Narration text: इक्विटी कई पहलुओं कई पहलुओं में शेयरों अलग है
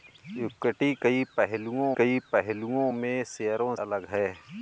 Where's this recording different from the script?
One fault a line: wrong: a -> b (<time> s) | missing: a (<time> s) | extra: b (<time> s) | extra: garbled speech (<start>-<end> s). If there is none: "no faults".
no faults